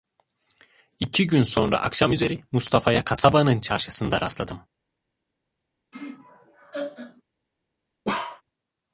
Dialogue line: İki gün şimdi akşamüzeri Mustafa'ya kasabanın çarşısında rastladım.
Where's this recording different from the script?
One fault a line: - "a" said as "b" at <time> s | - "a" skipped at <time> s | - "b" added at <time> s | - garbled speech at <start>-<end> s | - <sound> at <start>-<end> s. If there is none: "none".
- "şimdi" said as "sonra" at 1.4 s
- laugh at 5.9-7.2 s
- bark at 8.0-8.4 s